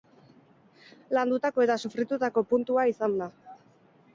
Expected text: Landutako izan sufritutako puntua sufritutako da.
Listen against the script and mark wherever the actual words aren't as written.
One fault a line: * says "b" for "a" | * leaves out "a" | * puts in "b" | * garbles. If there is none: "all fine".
* says "eta" for "izan"
* says "izan" for "sufritutako"